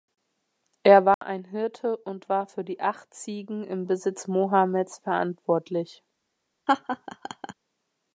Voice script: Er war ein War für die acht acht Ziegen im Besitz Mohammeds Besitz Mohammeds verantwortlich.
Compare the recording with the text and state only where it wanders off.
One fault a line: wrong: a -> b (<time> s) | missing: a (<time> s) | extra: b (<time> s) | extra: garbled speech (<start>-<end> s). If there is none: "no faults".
extra: Hirte und (1.4 s)
missing: acht (3.1 s)
missing: Besitz Mohammeds (5.0 s)